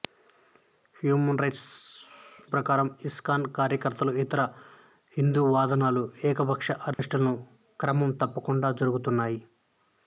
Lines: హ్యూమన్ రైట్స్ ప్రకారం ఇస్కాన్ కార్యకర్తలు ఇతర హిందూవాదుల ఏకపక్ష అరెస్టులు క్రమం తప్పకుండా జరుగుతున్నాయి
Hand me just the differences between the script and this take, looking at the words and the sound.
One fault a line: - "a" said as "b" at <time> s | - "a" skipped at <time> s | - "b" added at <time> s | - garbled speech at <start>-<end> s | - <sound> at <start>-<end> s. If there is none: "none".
- dropout at 6.9-7.0 s